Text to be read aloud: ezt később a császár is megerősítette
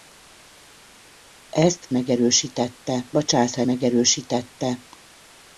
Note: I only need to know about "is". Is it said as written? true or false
false